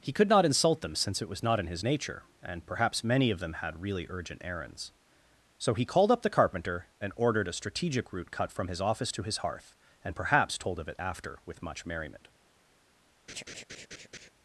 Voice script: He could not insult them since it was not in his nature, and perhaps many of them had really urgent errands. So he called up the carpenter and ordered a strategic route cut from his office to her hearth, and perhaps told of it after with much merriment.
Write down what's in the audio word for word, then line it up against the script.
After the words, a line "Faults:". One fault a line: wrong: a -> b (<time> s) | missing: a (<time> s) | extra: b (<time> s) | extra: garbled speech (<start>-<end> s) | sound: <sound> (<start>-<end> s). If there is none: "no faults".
He could not insult them since it was not in his nature, and perhaps many of them had really urgent errands. So he called up the carpenter and ordered a strategic route cut from his office to his hearth, and perhaps told of it after with much merriment.
Faults:
wrong: her -> his (9.2 s)
sound: laugh (13.3-14.3 s)